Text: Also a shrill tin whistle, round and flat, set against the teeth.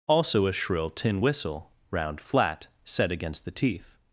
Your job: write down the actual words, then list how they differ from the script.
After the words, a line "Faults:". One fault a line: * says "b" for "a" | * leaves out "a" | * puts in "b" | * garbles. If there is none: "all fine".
Also a shrill tin whistle, round flat, set against the teeth.
Faults:
* leaves out "and"